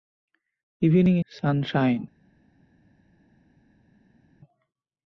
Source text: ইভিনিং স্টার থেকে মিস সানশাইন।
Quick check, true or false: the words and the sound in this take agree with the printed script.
false